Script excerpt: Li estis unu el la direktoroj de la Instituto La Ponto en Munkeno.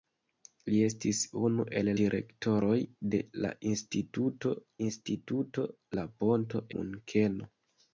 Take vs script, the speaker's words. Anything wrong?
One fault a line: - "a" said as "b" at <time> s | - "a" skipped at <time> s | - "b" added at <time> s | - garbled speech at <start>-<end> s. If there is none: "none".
- "la" skipped at 1.9 s
- "Instituto" added at 4.9 s
- "en" skipped at 6.6 s